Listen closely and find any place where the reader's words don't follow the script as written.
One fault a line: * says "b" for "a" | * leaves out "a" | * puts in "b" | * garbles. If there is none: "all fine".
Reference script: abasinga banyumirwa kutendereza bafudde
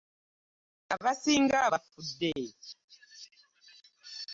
* leaves out "banyumirwa kutendereza"